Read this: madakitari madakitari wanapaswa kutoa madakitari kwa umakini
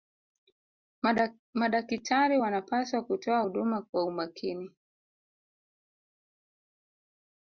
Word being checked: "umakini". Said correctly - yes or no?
yes